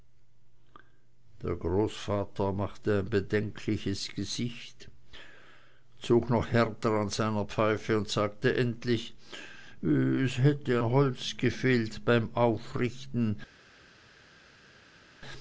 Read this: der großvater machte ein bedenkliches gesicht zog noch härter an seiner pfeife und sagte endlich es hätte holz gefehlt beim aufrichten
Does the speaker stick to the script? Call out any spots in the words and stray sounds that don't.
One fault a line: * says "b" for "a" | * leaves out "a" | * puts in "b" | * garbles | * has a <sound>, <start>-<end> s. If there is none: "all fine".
all fine